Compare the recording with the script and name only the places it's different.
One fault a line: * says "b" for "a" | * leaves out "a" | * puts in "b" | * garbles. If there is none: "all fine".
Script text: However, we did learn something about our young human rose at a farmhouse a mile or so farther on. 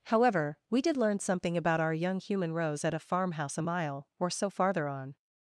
all fine